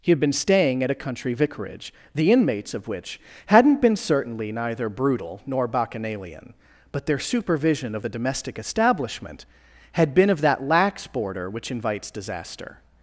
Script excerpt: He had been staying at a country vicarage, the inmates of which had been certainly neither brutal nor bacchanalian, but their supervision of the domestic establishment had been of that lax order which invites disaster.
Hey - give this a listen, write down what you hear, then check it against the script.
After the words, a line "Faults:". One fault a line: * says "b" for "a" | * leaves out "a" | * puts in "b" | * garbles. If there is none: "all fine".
He had been staying at a country vicarage, the inmates of which hadn't been certainly neither brutal nor bacchanalian, but their supervision of the domestic establishment had been of that lax border which invites disaster.
Faults:
* says "hadn't" for "had"
* says "border" for "order"